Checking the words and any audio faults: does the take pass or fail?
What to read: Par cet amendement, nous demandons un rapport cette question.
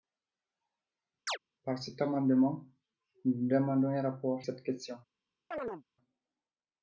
fail